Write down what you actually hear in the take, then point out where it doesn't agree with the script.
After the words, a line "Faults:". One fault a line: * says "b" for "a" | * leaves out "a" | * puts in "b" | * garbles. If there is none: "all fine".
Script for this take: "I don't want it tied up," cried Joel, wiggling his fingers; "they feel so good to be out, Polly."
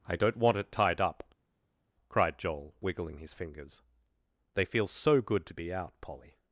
"I don't want it tied up," cried Joel, wiggling his fingers; "they feel so good to be out, Polly."
Faults:
all fine